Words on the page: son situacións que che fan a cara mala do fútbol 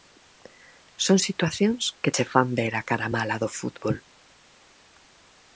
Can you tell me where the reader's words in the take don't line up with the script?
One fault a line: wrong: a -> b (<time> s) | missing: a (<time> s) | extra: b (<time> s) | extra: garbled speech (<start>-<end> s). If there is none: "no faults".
extra: ver (2.6 s)